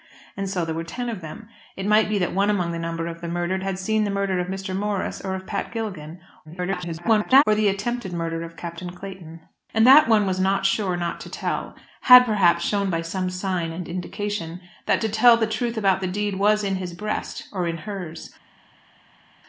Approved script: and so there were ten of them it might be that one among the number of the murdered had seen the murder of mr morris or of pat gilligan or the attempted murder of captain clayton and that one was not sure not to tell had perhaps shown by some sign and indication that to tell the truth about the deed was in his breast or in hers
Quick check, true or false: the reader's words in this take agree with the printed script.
false